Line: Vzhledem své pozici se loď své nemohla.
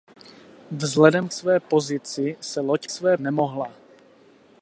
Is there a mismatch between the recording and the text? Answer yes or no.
no